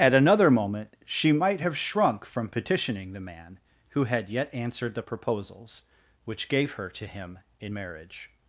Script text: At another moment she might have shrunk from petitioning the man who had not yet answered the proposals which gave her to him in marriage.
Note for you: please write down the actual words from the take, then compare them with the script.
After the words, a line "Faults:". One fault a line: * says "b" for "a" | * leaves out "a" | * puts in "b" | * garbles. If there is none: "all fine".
At another moment she might have shrunk from petitioning the man who had yet answered the proposals which gave her to him in marriage.
Faults:
* leaves out "not"